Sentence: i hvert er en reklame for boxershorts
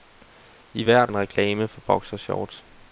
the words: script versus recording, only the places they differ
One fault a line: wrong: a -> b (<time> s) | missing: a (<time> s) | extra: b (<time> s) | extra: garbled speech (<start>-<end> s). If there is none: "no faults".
no faults